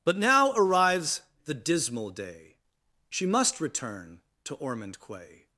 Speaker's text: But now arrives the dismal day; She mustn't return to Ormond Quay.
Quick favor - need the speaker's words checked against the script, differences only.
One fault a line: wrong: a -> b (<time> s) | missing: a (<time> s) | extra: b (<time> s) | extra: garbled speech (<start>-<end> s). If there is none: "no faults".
wrong: mustn't -> must (3.3 s)